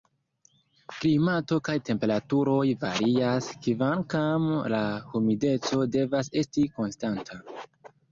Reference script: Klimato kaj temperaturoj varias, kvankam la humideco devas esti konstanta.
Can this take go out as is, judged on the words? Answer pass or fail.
pass